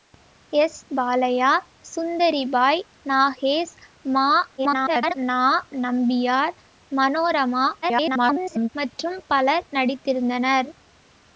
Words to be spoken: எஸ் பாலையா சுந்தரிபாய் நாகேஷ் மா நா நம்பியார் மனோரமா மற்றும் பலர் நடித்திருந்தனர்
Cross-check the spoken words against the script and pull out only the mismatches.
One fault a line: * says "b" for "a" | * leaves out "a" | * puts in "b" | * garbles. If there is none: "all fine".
* garbles
* garbles